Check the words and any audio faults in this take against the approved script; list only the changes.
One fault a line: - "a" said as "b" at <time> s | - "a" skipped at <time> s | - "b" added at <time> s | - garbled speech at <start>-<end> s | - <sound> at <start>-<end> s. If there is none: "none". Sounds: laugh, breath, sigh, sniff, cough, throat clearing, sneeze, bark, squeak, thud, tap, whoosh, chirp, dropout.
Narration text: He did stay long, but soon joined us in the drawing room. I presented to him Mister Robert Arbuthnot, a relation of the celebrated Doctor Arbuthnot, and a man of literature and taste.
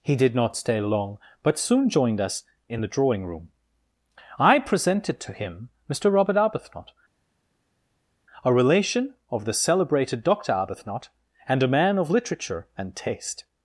- "not" added at 0.3 s